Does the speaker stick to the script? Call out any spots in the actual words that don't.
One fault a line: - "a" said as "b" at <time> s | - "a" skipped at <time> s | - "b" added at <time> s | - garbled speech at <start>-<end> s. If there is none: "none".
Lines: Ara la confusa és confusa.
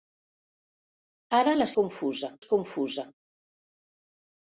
none